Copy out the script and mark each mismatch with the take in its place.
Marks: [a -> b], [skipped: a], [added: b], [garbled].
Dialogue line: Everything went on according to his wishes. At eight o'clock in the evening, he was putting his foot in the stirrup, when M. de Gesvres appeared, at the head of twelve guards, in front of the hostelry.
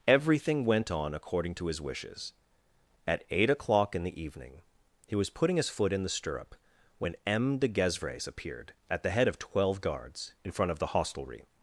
Everything went on according to his wishes. At eight o'clock in the evening, he was putting his foot in the stirrup, when M. de Gesvres appeared, at the head of twelve guards, in front of the hostelry.